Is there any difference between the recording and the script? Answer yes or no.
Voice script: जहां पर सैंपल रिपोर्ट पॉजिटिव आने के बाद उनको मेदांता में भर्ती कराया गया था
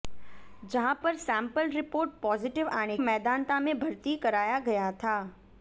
yes